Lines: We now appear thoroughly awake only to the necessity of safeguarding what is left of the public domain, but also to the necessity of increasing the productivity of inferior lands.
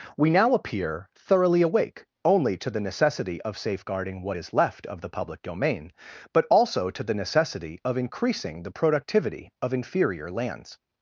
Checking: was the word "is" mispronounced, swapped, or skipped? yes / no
no